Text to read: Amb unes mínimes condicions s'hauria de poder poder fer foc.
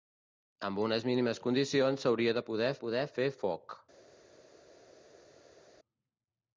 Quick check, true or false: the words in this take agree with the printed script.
true